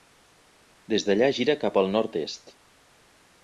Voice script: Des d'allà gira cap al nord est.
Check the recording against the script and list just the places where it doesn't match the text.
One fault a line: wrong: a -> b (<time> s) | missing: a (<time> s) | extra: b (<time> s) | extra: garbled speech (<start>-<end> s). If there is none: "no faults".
no faults